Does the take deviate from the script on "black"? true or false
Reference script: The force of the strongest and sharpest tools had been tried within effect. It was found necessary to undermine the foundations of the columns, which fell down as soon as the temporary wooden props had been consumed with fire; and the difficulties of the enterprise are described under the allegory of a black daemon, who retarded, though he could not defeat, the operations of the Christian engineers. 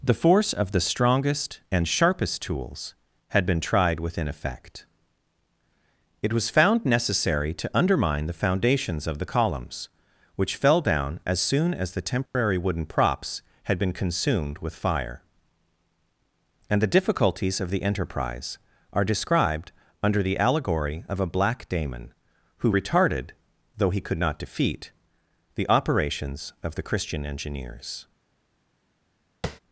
false